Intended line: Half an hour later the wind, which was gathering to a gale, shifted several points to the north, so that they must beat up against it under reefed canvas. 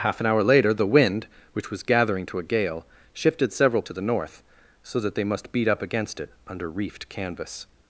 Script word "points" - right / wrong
wrong